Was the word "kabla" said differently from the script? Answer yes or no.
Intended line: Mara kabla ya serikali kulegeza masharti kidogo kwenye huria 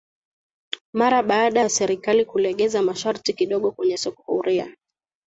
yes